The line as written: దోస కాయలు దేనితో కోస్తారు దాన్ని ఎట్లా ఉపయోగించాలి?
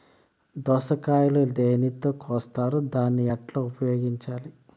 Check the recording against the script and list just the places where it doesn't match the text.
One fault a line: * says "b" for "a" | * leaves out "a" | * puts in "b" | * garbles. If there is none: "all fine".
all fine